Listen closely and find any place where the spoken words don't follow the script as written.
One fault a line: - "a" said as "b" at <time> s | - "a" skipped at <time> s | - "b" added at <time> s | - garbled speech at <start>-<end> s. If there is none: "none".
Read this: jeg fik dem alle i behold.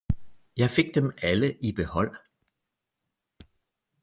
none